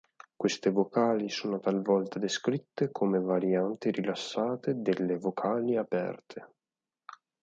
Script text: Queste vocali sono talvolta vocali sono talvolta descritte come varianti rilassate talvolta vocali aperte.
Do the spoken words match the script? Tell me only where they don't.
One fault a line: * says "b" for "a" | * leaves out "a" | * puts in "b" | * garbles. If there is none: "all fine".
* leaves out "vocali sono talvolta"
* says "delle" for "talvolta"